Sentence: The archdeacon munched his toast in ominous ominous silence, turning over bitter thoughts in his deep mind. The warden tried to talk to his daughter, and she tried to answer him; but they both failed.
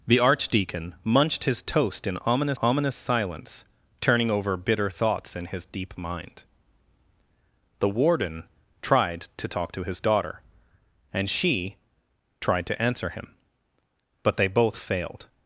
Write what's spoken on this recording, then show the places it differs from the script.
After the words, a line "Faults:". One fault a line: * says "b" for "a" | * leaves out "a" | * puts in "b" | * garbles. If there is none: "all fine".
The archdeacon munched his toast in ominous ominous silence, turning over bitter thoughts in his deep mind. The warden tried to talk to his daughter, and she tried to answer him; but they both failed.
Faults:
all fine